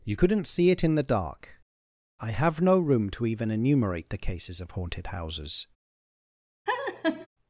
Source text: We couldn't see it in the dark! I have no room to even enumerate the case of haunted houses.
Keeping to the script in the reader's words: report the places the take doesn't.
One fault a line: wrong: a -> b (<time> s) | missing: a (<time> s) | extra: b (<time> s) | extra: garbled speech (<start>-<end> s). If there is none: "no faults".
wrong: We -> You (0.0 s)
wrong: case -> cases (4.2 s)